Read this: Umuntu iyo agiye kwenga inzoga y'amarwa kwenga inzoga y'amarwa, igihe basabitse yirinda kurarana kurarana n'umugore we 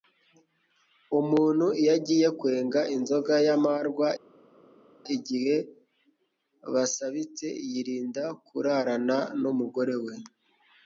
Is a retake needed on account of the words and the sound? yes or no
yes